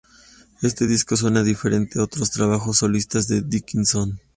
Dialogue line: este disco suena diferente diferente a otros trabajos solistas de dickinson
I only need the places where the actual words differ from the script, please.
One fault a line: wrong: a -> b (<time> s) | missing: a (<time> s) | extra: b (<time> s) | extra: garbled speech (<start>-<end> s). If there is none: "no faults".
missing: diferente (2.0 s)